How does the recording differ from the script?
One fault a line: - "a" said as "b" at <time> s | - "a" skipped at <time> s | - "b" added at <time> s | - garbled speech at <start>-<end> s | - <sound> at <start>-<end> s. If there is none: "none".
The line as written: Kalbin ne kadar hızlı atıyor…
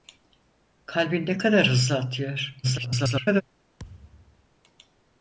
- garbled speech at 2.6-3.4 s
- thud at 3.8-4.5 s